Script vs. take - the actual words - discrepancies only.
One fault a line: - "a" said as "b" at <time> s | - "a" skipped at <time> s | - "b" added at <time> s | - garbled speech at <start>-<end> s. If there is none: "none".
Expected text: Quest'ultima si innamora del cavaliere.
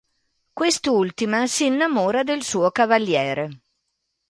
- "suo" added at 2.4 s